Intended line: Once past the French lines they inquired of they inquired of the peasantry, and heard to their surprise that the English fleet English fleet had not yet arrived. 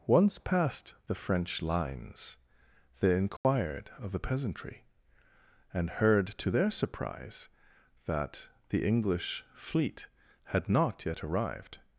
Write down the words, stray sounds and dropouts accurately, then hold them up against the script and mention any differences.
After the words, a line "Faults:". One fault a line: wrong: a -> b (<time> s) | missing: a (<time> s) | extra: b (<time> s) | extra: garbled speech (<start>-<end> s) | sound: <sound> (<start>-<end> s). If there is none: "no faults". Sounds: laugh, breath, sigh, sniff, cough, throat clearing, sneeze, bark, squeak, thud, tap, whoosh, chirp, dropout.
Once past the French lines they inquired of the peasantry, and heard to their surprise that the English fleet had not yet arrived.
Faults:
sound: dropout (3.4-3.4 s)
missing: they inquired of (4.1 s)
missing: English fleet (10.1 s)